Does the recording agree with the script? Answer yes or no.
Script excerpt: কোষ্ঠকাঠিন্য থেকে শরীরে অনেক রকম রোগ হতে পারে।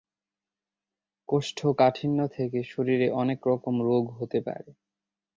yes